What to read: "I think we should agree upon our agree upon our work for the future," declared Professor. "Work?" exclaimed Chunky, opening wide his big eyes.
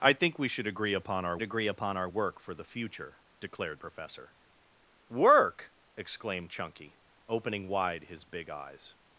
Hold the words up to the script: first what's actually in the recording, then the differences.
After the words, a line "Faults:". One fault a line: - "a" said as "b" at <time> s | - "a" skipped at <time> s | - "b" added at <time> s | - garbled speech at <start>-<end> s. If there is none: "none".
"I think we should agree upon our agree upon our work for the future," declared Professor. "Work?" exclaimed Chunky, opening wide his big eyes.
Faults:
none